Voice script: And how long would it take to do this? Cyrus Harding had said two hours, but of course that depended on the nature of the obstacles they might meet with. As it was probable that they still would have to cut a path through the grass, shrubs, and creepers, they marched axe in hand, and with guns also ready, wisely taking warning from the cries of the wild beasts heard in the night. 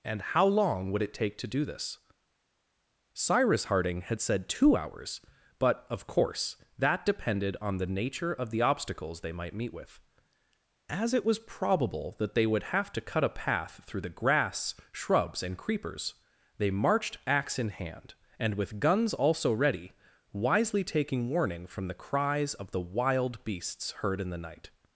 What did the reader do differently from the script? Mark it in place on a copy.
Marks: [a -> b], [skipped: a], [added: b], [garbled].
And how long would it take to do this? Cyrus Harding had said two hours, but of course that depended on the nature of the obstacles they might meet with. As it was probable that they [skipped: still] would have to cut a path through the grass, shrubs, and creepers, they marched axe in hand, and with guns also ready, wisely taking warning from the cries of the wild beasts heard in the night.